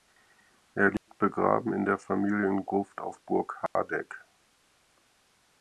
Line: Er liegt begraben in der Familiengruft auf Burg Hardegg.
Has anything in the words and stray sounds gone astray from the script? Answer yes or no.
yes